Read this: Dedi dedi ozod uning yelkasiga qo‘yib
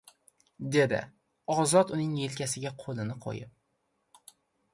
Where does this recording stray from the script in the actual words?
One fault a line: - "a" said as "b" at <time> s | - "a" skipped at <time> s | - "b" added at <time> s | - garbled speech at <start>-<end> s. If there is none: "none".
- "dedi" skipped at 1.0 s
- "qo‘lini" added at 2.8 s